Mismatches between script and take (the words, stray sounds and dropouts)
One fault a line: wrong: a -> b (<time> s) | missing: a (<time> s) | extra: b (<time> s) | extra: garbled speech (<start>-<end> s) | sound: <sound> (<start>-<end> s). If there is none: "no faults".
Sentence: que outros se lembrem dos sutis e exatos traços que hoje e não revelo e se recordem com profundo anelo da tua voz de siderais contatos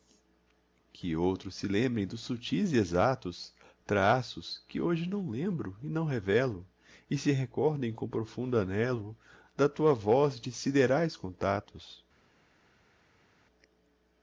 extra: não lembro (5.1 s)